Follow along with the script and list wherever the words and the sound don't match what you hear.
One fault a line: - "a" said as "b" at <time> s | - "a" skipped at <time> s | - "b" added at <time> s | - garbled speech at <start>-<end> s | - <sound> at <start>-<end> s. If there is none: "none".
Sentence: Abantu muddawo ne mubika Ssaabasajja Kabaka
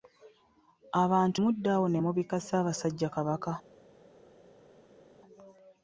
none